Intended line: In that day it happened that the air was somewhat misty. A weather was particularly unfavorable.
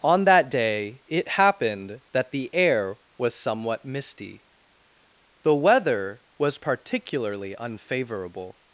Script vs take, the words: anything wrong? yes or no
yes